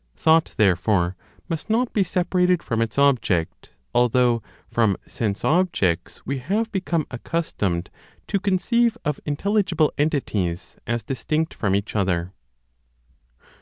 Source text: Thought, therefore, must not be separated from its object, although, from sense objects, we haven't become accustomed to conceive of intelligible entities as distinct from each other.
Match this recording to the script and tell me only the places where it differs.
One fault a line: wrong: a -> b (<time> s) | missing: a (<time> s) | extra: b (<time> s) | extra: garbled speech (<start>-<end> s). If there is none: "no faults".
wrong: haven't -> have (6.4 s)